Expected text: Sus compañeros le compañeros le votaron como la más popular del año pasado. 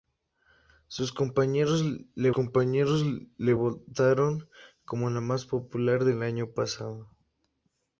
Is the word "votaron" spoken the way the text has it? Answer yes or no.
yes